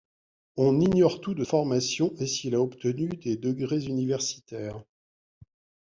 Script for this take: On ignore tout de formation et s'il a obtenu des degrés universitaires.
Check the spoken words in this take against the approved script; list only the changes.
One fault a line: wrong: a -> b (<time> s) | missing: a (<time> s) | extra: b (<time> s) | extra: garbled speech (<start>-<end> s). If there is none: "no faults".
no faults